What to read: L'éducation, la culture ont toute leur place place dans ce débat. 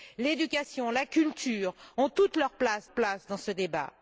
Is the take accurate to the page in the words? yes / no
yes